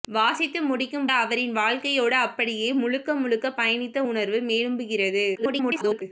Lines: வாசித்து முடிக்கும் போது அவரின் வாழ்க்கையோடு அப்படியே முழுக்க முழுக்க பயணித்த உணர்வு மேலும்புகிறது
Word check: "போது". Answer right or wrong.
wrong